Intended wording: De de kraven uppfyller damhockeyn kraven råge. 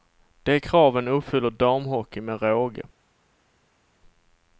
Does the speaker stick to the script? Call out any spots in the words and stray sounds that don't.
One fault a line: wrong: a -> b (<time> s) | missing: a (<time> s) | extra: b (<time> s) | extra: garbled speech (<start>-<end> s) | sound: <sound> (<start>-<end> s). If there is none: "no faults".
missing: de (0.6 s)
wrong: kraven -> med (2.2 s)